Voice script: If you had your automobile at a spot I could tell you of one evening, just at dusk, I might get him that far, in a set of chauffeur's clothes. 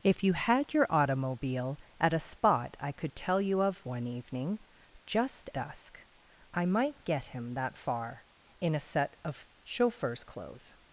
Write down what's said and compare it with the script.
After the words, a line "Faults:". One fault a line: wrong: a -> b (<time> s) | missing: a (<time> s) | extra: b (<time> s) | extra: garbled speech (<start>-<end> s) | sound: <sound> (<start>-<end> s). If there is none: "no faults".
If you had your automobile at a spot I could tell you of one evening, just dusk, I might get him that far, in a set of chauffeur's clothes.
Faults:
missing: at (5.5 s)